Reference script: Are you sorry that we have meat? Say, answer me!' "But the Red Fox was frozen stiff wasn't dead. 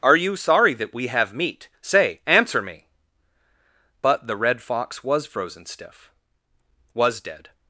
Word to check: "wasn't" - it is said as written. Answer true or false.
false